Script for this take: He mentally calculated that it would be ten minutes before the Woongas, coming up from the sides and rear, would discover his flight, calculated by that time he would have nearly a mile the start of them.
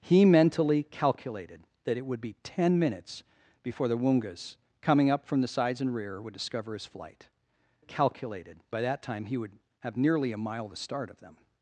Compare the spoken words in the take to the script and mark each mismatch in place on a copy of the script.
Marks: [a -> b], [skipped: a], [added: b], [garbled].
He mentally calculated that it would be ten minutes before the Woongas, coming up from the sides and rear, would discover his flight, calculated by that time he would have nearly a mile the start of them.